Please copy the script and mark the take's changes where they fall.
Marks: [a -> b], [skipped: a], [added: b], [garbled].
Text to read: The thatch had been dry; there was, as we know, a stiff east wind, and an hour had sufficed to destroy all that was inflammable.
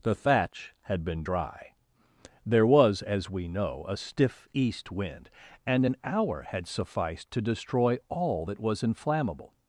The thatch had been dry; there was, as we know, a stiff east wind, and an hour had sufficed to destroy all that was inflammable.